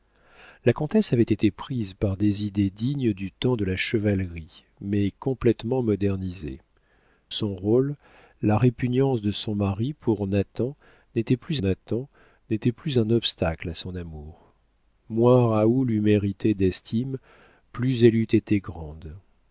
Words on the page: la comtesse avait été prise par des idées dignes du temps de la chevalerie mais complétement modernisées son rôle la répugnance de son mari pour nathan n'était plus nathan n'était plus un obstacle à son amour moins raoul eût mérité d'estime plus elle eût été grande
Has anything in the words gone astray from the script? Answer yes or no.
no